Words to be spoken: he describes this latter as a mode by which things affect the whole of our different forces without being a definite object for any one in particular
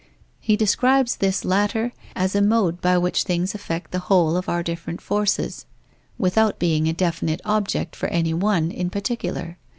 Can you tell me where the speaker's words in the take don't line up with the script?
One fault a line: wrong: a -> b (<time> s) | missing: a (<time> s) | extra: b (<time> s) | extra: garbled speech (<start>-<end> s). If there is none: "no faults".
no faults